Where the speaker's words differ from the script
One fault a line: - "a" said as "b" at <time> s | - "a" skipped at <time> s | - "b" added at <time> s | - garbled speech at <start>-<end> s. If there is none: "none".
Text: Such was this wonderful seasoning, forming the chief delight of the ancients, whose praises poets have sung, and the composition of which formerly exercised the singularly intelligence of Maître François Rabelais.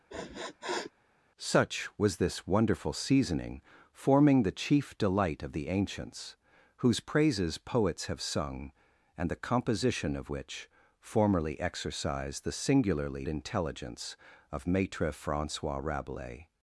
none